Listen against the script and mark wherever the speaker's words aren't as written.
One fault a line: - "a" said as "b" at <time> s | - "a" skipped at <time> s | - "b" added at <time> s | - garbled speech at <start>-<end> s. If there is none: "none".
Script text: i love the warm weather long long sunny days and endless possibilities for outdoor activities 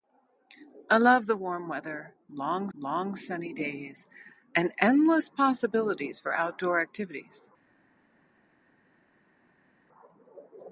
none